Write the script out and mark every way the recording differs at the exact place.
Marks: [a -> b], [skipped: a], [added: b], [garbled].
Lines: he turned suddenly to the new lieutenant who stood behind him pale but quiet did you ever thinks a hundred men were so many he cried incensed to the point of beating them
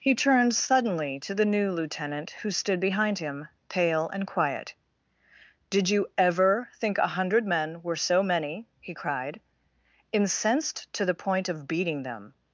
he turned suddenly to the new lieutenant who stood behind him pale [but -> and] quiet did you ever [thinks -> think] a hundred men were so many he cried incensed to the point of beating them